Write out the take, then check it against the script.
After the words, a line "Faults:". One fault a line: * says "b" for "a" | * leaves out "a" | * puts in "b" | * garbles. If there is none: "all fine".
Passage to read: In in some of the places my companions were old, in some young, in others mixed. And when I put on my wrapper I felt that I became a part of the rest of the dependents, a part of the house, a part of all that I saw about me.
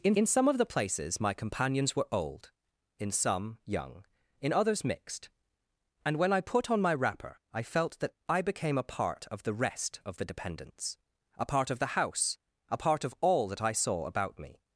In in some of the places my companions were old, in some young, in others mixed. And when I put on my wrapper I felt that I became a part of the rest of the dependents, a part of the house, a part of all that I saw about me.
Faults:
all fine